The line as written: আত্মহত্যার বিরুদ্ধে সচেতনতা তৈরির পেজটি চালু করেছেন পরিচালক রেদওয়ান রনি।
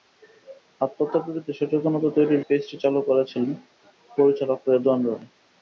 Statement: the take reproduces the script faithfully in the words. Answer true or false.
true